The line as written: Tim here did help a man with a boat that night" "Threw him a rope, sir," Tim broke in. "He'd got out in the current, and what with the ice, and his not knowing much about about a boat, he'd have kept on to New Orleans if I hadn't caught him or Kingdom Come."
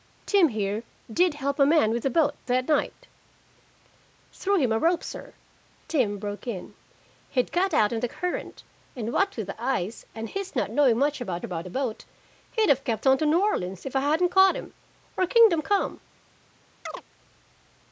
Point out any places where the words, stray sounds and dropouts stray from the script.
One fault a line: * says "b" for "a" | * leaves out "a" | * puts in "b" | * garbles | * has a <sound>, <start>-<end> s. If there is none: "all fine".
* has a chirp, 16.9-17.0 s